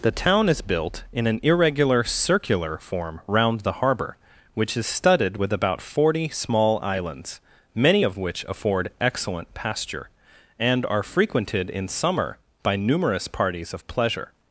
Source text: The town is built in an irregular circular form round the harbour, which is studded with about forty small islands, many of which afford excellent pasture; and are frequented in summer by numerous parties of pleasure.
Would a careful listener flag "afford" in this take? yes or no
no